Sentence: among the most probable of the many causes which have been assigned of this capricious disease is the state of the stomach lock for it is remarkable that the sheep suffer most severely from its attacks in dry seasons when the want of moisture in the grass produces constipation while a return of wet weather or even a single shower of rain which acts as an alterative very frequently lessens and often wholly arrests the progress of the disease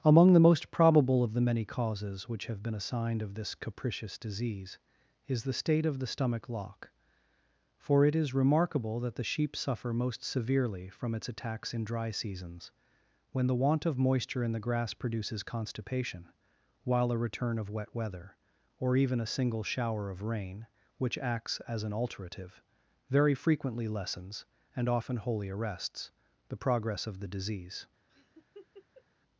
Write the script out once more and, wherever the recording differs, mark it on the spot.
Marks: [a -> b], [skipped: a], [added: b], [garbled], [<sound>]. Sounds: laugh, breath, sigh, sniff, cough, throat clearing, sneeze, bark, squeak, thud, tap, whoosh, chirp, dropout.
among the most probable of the many causes which have been assigned of this capricious disease is the state of the stomach lock for it is remarkable that the sheep suffer most severely from its attacks in dry seasons when the want of moisture in the grass produces constipation while a return of wet weather or even a single shower of rain which acts as an alterative very frequently lessens and often wholly arrests the progress of the disease [laugh]